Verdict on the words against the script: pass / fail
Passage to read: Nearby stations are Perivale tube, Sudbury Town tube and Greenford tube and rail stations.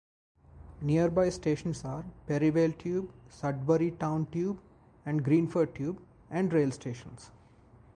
pass